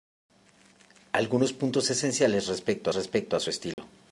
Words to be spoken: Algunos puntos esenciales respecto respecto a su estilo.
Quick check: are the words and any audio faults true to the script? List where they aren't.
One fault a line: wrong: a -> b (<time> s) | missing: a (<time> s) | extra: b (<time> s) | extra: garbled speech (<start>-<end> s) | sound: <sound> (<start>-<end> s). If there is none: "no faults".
sound: dropout (3.7-3.8 s)